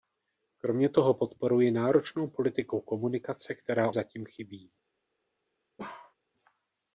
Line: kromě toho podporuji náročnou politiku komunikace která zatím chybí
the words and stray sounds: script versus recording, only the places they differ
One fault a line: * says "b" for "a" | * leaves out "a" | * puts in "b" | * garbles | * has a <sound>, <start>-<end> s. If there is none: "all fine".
* has a bark, 5.8-6.1 s